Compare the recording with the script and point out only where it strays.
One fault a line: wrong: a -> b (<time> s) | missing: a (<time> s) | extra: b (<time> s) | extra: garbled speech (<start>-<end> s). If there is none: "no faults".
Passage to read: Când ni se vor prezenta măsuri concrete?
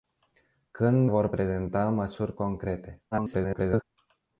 missing: ni se (1.1 s)
extra: garbled speech (3.1-3.8 s)